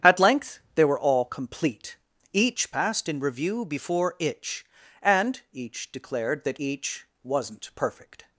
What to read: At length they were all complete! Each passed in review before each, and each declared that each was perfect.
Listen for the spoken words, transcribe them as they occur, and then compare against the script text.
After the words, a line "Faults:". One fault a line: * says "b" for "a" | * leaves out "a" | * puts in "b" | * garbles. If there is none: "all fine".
At length they were all complete! Each passed in review before itch, and each declared that each wasn't perfect.
Faults:
* says "itch" for "each"
* says "wasn't" for "was"